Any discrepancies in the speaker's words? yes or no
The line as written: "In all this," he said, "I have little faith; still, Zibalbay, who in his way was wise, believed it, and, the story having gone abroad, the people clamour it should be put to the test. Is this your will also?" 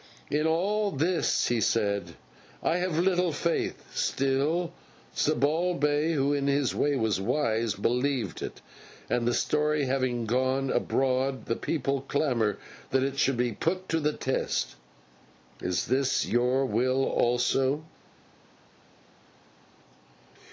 yes